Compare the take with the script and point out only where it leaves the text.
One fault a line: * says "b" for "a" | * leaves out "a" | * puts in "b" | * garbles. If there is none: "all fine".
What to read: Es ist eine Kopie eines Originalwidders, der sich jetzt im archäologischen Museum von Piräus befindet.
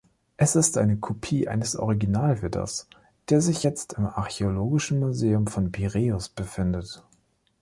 all fine